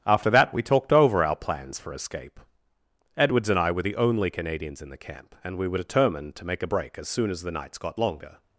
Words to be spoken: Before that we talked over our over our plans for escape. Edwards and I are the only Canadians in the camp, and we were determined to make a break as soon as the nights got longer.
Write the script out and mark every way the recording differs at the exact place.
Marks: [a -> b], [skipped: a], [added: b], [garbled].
[Before -> After] that we talked over our [skipped: over our] plans for escape. Edwards and I [are -> were] the only Canadians in the camp, and we were determined to make a break as soon as the nights got longer.